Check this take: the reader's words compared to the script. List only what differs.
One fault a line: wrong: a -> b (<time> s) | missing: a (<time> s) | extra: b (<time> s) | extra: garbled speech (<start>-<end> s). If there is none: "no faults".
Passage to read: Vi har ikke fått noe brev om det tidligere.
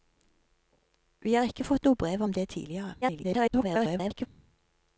extra: garbled speech (3.0-4.3 s)